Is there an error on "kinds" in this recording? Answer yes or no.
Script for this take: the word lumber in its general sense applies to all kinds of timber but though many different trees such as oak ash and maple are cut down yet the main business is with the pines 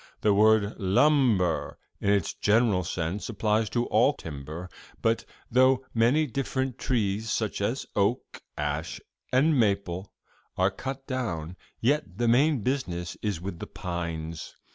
yes